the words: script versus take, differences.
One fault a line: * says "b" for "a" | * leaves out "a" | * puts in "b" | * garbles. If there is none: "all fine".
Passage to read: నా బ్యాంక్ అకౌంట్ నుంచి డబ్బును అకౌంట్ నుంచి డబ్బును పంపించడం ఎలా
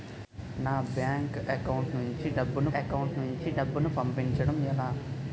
all fine